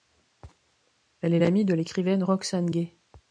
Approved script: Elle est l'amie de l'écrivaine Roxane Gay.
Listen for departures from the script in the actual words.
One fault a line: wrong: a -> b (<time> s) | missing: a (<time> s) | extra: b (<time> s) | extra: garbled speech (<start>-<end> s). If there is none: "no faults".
no faults